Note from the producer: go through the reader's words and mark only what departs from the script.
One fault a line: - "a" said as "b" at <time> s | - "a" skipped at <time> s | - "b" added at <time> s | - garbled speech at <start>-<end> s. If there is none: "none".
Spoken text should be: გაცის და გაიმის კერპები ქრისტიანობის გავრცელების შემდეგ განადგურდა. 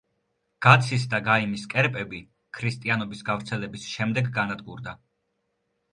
none